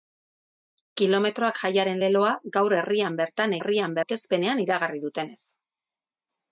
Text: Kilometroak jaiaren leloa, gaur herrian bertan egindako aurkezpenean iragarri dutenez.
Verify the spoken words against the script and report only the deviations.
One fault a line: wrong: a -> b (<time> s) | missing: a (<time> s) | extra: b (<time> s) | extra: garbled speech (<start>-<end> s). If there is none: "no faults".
wrong: egindako -> herrian (3.6 s)